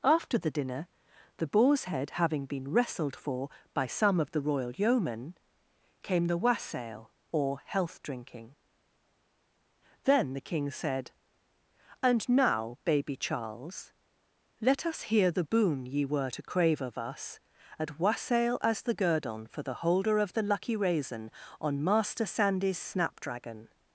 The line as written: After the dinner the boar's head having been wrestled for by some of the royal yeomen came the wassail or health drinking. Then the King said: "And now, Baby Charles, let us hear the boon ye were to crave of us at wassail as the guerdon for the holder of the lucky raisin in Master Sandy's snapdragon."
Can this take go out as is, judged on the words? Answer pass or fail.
fail